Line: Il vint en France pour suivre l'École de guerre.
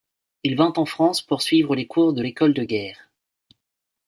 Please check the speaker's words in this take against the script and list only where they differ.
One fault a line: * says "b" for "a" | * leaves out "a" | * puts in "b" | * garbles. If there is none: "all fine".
* puts in "les cours de"